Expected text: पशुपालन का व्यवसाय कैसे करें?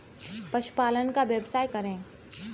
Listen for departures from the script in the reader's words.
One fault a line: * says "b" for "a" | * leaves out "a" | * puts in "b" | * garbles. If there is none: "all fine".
* leaves out "कैसे"